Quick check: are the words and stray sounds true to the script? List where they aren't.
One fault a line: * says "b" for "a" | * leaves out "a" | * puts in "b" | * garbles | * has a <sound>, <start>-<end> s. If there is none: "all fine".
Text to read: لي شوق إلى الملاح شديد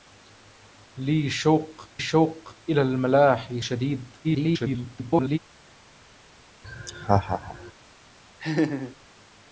* puts in "شوق"
* garbles
* has a laugh, 6.6-7.7 s
* has a laugh, 8.4-9.0 s